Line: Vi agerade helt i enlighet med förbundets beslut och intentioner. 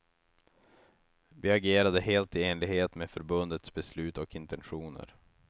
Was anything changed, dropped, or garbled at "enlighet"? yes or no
no